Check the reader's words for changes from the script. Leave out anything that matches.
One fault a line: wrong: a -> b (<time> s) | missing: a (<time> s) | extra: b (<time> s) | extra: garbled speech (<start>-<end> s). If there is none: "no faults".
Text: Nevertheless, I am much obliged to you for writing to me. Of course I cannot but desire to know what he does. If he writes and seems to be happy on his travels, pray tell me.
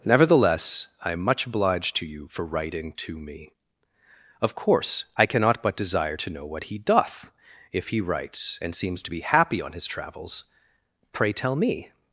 wrong: does -> doth (6.8 s)